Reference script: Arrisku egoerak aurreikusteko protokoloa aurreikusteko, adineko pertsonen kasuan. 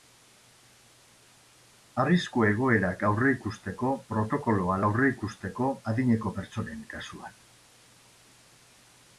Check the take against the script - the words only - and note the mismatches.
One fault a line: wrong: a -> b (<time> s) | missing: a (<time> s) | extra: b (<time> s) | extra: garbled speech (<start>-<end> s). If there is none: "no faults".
no faults